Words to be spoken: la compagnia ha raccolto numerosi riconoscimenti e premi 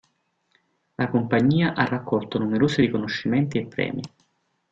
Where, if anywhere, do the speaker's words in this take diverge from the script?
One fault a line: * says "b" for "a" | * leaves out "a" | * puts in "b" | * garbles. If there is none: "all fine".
all fine